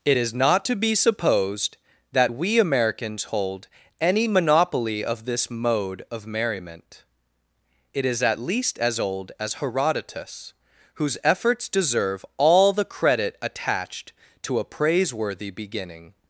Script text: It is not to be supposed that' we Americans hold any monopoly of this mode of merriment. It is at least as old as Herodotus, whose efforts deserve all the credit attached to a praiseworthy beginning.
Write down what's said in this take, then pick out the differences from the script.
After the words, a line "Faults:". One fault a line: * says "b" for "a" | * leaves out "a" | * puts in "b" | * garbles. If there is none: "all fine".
It is not to be supposed that' we Americans hold any monopoly of this mode of merriment. It is at least as old as Herodotus, whose efforts deserve all the credit attached to a praiseworthy beginning.
Faults:
all fine